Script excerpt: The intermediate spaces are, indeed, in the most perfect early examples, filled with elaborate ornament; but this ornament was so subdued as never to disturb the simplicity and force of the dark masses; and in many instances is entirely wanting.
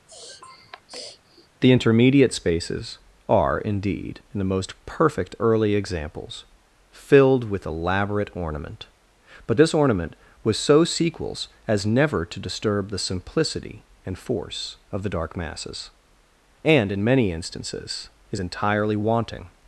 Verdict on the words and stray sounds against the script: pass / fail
fail